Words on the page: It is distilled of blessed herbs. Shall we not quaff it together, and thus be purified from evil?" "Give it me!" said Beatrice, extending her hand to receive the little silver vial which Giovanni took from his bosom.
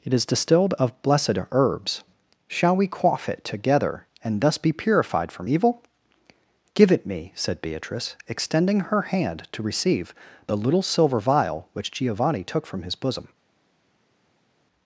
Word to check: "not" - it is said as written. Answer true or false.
false